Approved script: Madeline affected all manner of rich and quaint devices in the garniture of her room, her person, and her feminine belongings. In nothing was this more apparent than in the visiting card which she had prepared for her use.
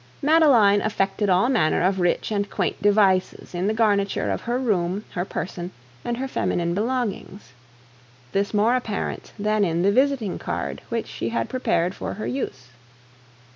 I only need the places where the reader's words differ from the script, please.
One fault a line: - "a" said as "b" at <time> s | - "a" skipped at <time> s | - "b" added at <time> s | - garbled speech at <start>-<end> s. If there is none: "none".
- "In nothing was" skipped at 7.5 s